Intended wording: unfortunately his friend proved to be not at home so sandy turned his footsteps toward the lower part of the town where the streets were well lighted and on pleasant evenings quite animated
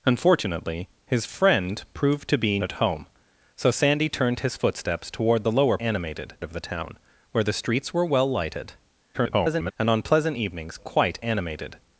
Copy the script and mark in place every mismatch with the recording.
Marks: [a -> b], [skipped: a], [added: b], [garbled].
unfortunately his friend proved to be [skipped: not] at home so sandy turned his footsteps toward the lower [part -> animated] of the town where the streets were well lighted [garbled] and on pleasant evenings quite animated